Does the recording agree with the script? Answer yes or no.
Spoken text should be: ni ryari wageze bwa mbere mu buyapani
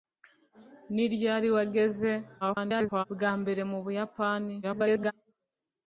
no